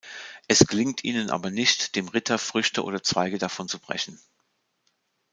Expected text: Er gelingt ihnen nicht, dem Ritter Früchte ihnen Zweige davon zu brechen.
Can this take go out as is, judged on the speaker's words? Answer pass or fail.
fail